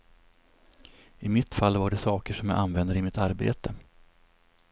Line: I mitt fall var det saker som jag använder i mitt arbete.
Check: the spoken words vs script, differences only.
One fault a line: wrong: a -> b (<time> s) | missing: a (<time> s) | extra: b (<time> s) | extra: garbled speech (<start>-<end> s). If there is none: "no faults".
no faults